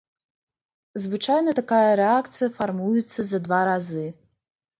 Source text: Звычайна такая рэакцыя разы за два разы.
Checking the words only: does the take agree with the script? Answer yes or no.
no